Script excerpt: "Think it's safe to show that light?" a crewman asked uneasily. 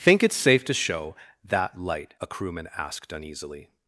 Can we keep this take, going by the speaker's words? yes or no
yes